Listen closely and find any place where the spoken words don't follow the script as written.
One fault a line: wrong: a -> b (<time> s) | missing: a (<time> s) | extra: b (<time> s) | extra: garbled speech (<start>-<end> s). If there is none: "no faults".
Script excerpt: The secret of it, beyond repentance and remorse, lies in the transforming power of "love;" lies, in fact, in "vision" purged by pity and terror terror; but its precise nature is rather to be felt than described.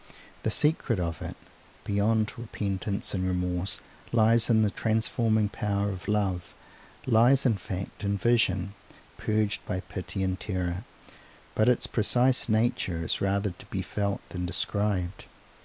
missing: terror (10.8 s)